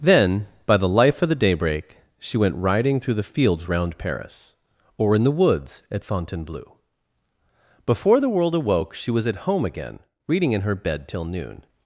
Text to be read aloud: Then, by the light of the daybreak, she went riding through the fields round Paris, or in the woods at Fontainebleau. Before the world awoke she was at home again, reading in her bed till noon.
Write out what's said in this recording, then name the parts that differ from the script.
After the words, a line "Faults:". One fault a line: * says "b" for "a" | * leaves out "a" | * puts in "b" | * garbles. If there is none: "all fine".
Then, by the life of the daybreak, she went riding through the fields round Paris, or in the woods at Fontainebleau. Before the world awoke she was at home again, reading in her bed till noon.
Faults:
* says "life" for "light"